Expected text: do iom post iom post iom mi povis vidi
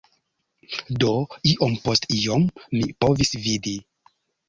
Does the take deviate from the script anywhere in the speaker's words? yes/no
yes